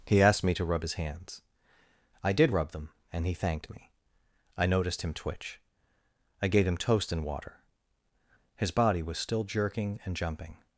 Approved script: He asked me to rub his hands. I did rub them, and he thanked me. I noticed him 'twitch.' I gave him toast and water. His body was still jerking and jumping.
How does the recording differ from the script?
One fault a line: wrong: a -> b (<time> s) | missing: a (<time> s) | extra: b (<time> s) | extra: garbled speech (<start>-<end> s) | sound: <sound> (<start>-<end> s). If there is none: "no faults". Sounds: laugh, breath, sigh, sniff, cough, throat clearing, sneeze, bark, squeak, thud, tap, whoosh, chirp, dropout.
no faults